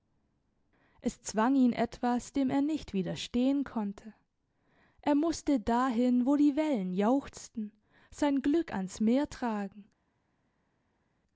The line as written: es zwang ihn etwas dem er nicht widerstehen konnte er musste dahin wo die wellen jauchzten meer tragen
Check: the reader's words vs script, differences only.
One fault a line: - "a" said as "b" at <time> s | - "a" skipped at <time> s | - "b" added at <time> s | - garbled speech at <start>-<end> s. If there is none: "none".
- "sein glück ans" added at 8.1 s